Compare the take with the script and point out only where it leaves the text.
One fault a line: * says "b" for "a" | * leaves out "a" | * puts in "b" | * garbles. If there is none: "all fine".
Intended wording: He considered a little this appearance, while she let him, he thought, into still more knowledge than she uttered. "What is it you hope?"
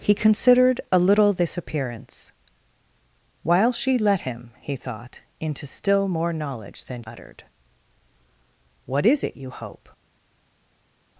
* leaves out "she"